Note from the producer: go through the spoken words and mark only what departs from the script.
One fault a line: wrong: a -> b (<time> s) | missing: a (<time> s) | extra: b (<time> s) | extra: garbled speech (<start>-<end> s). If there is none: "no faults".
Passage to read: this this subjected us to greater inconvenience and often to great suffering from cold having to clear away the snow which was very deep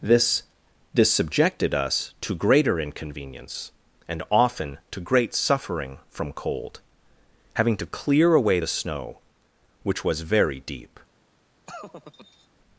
no faults